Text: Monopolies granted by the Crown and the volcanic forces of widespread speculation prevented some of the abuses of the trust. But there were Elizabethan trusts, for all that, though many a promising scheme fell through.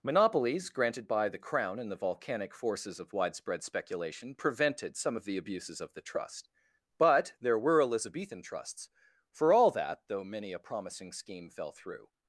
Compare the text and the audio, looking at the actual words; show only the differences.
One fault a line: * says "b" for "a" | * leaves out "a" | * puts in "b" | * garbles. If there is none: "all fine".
all fine